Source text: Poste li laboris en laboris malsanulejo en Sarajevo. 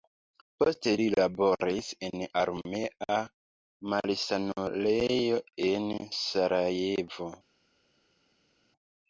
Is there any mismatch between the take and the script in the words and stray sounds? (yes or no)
yes